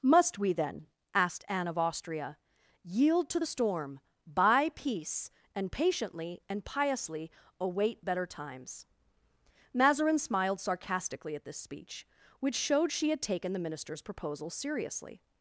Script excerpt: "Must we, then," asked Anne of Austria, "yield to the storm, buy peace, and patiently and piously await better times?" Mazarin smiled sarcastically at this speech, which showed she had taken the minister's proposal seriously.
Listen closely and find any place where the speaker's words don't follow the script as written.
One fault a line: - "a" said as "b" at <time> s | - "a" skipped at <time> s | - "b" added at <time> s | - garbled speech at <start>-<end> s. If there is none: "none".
none